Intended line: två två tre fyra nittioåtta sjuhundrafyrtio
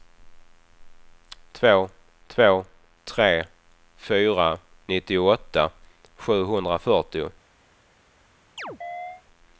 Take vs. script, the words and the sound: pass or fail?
fail